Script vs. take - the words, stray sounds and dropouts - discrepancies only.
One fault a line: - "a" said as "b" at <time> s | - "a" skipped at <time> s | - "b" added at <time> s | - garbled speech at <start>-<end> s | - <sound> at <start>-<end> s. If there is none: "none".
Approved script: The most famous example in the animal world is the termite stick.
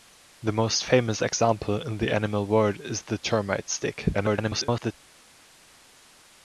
- garbled speech at 4.1-4.9 s